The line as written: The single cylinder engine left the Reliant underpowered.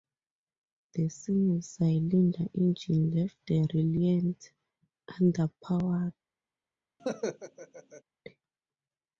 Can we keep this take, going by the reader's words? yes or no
yes